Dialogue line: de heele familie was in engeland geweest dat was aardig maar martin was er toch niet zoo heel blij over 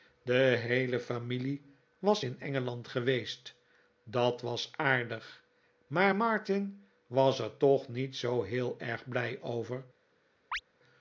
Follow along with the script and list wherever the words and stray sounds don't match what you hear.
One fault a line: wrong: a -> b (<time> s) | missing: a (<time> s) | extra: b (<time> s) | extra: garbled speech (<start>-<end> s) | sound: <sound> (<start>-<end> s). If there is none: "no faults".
extra: erg (8.8 s)
sound: chirp (10.5-10.6 s)